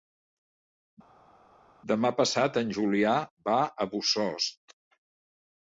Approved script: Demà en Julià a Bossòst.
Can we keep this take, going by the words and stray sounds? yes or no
no